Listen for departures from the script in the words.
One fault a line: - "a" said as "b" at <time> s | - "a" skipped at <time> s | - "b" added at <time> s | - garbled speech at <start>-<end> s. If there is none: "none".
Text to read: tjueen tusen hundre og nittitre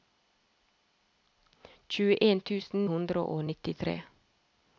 none